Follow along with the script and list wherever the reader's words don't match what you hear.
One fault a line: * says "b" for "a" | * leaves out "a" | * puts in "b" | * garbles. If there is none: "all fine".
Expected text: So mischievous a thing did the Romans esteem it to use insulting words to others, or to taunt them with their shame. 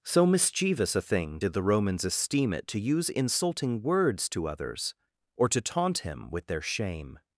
* says "him" for "them"